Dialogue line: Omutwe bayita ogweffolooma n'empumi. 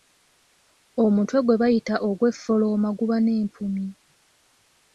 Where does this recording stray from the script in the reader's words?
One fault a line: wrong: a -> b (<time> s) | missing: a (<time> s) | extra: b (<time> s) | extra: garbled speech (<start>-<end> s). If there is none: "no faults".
extra: gwe (1.4 s)
extra: guba (3.0 s)